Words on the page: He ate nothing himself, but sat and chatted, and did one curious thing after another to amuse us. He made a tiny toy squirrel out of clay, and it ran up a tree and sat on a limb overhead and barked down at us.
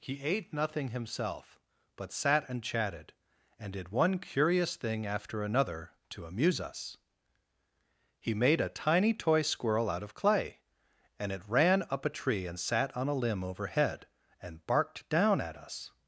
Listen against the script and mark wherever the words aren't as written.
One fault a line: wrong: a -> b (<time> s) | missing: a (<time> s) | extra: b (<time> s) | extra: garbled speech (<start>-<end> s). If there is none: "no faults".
no faults